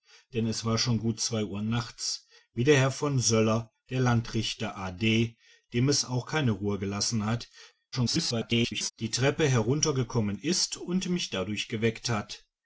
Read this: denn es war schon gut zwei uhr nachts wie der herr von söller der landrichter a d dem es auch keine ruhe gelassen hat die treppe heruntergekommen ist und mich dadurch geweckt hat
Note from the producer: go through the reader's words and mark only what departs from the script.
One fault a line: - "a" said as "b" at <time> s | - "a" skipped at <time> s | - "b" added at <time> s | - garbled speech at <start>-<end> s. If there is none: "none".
- garbled speech at 7.9-8.9 s